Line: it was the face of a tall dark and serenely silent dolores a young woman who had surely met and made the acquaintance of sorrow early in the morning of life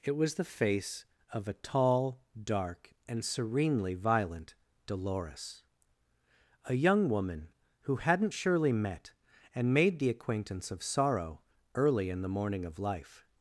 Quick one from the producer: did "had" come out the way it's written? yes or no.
no